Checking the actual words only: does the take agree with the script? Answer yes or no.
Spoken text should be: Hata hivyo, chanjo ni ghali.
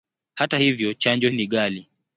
yes